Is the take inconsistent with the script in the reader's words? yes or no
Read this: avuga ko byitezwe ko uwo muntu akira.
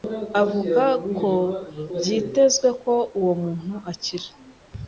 no